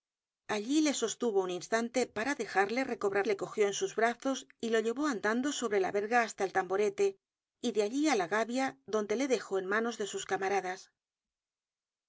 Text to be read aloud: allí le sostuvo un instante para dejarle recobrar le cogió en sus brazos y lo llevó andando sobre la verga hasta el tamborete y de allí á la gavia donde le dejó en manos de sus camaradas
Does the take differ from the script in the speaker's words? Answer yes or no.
no